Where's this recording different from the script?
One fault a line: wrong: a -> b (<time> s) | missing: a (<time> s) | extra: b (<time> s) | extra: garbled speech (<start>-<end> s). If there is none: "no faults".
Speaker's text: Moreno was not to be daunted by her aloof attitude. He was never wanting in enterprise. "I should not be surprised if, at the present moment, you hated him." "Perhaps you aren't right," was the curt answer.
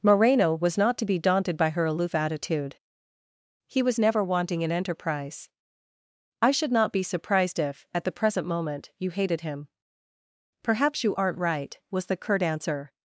no faults